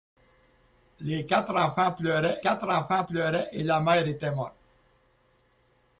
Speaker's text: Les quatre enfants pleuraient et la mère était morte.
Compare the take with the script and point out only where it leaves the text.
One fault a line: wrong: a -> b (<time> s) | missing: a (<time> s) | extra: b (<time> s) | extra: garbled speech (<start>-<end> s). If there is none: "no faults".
extra: quatre enfants pleuraient (2.4 s)